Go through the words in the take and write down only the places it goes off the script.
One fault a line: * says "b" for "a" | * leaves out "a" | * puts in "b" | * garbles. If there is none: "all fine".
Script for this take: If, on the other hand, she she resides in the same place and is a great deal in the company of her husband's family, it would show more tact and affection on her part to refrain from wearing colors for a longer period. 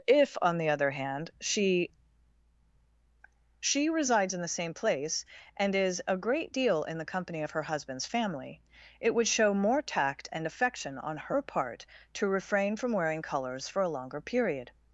all fine